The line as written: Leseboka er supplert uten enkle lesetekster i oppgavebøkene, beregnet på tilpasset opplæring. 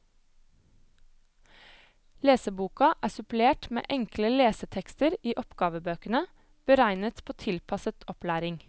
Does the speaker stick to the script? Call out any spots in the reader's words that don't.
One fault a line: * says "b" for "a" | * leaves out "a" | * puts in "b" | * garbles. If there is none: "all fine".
* says "med" for "uten"